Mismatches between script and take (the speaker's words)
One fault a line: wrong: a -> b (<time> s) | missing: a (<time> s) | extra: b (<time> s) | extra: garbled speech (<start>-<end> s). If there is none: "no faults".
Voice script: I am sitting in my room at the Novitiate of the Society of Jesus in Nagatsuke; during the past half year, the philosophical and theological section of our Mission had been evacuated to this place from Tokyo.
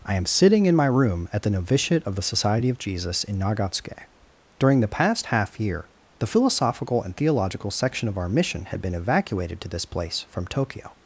no faults